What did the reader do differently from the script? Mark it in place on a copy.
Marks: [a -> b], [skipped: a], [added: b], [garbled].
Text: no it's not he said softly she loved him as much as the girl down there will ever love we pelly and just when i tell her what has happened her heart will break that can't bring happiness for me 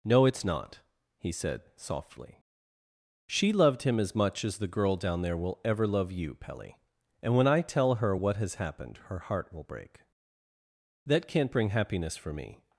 no it's not he said softly she loved him as much as the girl down there will ever love [we -> you] pelly and [skipped: just] when i tell her what has happened her heart will break that can't bring happiness for me